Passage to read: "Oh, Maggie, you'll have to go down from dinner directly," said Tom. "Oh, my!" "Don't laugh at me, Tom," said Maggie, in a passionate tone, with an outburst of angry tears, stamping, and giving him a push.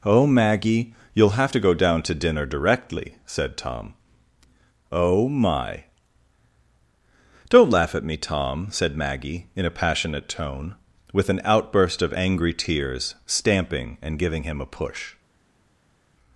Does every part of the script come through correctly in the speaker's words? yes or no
no